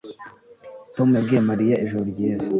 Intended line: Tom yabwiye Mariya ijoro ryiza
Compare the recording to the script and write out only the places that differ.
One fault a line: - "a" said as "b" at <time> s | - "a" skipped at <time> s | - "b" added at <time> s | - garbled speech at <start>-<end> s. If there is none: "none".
none